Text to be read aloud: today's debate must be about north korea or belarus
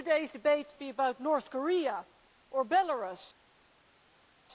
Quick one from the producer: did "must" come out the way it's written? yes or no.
no